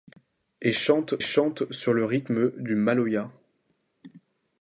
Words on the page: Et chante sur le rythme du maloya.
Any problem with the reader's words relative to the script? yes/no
yes